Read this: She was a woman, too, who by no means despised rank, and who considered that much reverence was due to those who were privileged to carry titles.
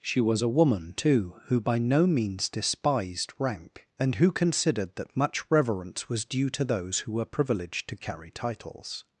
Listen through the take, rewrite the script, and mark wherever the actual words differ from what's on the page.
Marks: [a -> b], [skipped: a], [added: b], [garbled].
She was a woman, too, who by no means despised rank, and who considered that much reverence was due to those who were privileged to carry titles.